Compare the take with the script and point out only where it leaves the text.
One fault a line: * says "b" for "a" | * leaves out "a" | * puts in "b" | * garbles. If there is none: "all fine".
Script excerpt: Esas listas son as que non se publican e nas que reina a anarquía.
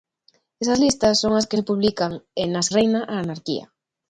* leaves out "non"
* leaves out "que"